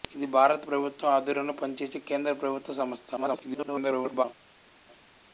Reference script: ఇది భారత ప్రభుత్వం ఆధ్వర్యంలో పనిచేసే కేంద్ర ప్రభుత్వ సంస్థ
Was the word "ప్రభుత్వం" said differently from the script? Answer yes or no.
no